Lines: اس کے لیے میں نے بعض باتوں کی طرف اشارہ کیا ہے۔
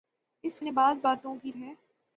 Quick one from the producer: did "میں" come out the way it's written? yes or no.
no